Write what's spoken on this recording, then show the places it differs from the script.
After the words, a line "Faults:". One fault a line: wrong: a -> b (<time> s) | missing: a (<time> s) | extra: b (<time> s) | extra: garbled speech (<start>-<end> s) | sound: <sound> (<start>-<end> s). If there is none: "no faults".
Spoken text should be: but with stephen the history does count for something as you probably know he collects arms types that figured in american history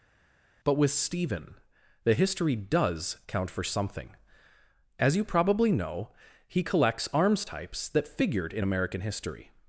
but with stephen the history does count for something as you probably know he collects arms types that figured in american history
Faults:
no faults